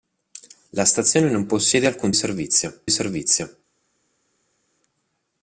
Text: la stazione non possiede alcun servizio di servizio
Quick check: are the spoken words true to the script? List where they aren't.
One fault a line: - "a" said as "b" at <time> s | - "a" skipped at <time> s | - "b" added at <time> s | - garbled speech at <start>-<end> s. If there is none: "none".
none